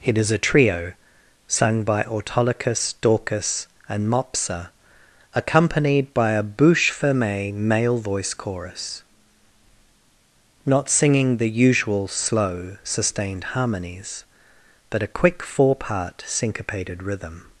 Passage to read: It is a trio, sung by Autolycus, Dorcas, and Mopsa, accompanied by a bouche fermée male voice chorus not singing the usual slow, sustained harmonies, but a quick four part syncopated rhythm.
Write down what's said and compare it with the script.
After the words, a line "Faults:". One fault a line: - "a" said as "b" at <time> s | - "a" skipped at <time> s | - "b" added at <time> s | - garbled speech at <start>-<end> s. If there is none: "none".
It is a trio, sung by Autolycus, Dorcas, and Mopsa, accompanied by a bouche fermée male voice chorus not singing the usual slow, sustained harmonies, but a quick four part syncopated rhythm.
Faults:
none